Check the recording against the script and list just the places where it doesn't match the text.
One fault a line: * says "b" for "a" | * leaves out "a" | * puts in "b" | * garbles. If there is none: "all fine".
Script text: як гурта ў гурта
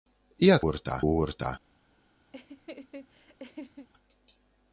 all fine